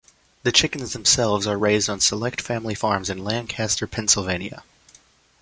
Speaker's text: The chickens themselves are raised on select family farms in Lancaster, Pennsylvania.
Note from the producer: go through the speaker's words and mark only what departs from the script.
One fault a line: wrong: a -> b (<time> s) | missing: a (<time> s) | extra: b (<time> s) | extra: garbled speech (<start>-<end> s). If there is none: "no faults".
no faults